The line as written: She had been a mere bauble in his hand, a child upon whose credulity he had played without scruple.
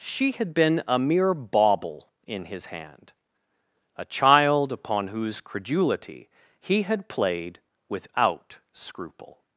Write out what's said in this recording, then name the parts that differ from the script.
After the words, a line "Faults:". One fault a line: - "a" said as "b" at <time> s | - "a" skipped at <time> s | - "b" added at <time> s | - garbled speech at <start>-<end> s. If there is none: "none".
She had been a mere bauble in his hand, a child upon whose credulity he had played without scruple.
Faults:
none